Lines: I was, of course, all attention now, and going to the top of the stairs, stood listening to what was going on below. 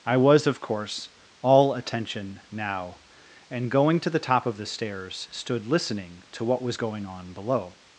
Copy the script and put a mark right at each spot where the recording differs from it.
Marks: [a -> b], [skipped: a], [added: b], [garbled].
I was, of course, all attention now, and going to the top of the stairs, stood listening to what was going on below.